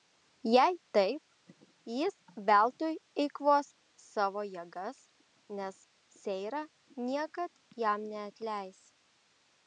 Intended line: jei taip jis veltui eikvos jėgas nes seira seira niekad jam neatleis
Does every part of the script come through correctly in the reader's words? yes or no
no